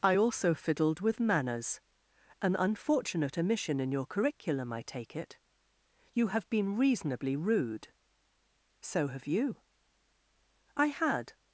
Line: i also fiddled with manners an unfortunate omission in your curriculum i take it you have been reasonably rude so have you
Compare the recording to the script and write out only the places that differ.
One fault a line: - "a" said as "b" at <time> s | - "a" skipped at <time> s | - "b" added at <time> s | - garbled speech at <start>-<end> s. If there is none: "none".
- "i had" added at 10.8 s